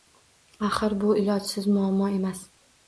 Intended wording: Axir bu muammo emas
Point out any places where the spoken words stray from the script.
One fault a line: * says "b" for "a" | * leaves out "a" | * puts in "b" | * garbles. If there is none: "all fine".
* puts in "ilojsiz"